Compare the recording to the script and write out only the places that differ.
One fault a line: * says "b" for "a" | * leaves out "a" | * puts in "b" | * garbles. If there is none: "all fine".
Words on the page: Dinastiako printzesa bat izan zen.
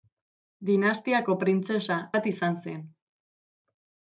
all fine